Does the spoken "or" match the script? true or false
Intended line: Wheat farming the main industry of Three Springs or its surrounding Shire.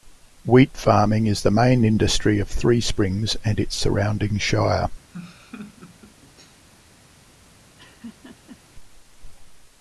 false